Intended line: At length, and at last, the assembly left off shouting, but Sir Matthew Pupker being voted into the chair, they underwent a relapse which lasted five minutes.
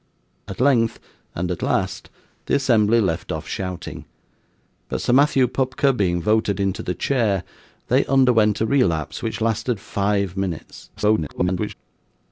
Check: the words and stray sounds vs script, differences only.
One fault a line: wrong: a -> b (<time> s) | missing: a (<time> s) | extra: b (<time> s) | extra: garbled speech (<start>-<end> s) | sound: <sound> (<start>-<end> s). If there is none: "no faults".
extra: garbled speech (11.0-11.7 s)